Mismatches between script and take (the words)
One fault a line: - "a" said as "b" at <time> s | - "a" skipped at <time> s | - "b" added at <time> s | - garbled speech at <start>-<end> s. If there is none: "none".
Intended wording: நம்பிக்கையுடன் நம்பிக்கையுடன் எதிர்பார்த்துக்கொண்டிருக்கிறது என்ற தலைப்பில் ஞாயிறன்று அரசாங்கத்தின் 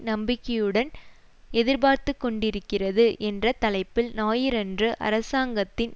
- "நம்பிக்கையுடன்" skipped at 0.9 s